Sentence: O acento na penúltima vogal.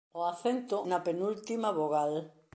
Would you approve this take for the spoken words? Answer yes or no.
yes